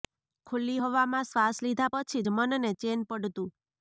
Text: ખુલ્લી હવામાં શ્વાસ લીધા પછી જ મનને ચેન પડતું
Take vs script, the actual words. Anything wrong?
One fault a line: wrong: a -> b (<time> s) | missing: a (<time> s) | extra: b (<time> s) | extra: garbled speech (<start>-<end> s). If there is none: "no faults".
no faults